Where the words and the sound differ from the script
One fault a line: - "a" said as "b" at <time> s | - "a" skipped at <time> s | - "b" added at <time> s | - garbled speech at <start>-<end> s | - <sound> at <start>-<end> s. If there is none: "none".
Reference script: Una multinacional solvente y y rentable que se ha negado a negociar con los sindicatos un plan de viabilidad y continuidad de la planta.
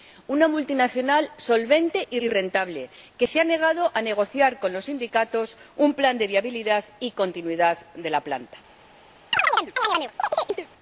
- chirp at 9.3-10.7 s